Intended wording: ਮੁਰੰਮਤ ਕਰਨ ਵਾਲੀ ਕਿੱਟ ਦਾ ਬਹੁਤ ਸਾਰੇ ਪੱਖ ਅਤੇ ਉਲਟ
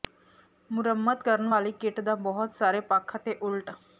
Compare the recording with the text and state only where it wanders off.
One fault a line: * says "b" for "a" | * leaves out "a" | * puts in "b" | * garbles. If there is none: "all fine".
all fine